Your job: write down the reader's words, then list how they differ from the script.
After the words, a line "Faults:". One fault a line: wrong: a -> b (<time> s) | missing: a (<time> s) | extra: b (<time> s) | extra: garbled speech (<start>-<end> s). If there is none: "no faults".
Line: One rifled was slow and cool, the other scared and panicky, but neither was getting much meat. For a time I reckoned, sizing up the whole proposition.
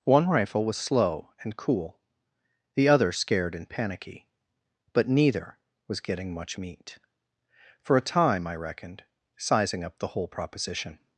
One rifle was slow and cool, the other scared and panicky, but neither was getting much meat. For a time I reckoned, sizing up the whole proposition.
Faults:
wrong: rifled -> rifle (0.3 s)